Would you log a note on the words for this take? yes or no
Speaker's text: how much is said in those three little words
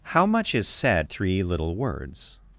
yes